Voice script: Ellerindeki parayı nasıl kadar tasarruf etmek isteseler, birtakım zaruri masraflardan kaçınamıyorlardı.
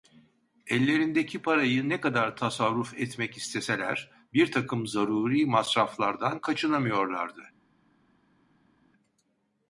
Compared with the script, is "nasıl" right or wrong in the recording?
wrong